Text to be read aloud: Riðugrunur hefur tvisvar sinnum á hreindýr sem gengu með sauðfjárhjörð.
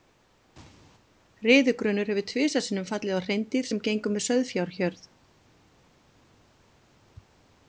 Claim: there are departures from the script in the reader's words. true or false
true